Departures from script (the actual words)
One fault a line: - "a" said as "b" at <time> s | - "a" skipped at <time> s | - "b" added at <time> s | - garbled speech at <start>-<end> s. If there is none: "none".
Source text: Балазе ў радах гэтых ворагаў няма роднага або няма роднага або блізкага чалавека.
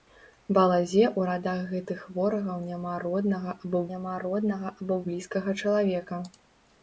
none